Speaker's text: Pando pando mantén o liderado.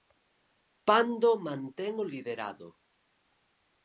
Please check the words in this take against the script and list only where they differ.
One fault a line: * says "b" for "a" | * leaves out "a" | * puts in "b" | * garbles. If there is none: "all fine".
* leaves out "pando"